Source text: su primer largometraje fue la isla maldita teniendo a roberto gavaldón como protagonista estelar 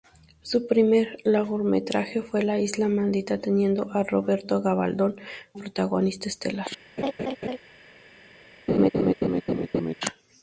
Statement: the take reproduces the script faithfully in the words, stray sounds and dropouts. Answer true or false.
false